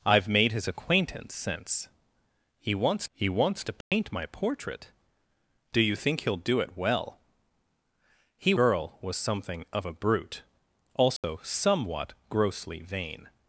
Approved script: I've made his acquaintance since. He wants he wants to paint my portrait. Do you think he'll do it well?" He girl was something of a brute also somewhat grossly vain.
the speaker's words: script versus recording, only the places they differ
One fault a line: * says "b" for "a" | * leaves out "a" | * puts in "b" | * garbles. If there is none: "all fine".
all fine